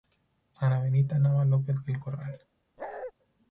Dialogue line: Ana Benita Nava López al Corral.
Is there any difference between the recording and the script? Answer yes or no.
yes